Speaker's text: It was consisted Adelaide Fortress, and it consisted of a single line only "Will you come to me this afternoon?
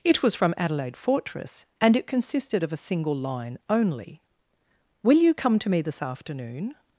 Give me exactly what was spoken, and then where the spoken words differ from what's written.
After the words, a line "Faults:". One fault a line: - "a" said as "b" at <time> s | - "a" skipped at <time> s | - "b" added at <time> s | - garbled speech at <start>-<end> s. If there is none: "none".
It was from Adelaide Fortress, and it consisted of a single line only "Will you come to me this afternoon?
Faults:
- "consisted" said as "from" at 0.3 s